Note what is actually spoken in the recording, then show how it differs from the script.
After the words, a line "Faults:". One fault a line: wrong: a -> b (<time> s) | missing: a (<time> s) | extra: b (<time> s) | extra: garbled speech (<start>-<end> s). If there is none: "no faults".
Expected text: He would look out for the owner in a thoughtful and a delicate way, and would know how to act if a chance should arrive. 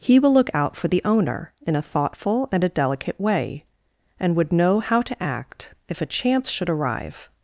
He will look out for the owner in a thoughtful and a delicate way, and would know how to act if a chance should arrive.
Faults:
wrong: would -> will (0.2 s)